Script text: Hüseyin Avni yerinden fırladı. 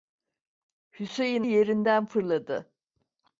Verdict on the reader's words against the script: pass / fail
fail